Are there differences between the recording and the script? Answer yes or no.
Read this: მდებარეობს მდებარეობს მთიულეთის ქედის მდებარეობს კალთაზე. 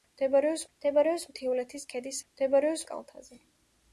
no